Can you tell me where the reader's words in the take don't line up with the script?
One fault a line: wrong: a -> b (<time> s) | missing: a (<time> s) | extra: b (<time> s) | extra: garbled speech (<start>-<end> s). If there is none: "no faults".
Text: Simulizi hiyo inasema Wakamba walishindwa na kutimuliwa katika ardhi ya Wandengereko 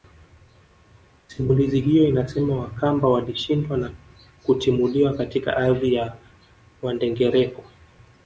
no faults